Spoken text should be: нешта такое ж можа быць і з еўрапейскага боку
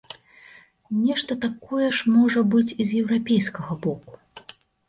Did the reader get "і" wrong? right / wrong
right